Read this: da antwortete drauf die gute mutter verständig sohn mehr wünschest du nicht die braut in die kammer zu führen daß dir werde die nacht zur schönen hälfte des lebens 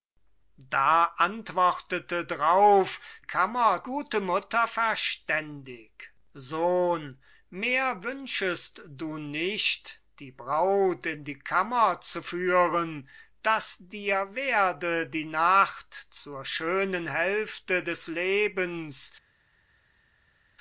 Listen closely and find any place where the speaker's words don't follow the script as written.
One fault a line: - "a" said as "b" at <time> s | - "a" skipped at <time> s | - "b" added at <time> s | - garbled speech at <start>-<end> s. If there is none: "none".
- "die" said as "kammer" at 3.2 s